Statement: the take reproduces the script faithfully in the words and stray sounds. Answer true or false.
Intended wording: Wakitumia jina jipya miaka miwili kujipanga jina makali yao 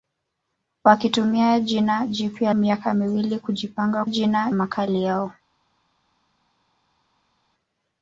true